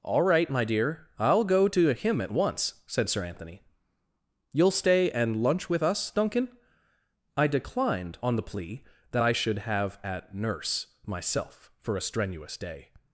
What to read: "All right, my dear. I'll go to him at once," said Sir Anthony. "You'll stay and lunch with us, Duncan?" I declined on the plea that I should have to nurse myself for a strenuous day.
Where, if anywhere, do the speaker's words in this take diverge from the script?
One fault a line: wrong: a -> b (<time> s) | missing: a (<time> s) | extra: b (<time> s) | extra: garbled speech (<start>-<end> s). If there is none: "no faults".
wrong: to -> at (10.0 s)